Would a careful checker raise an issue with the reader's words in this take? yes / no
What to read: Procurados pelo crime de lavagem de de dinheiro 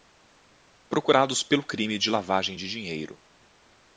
yes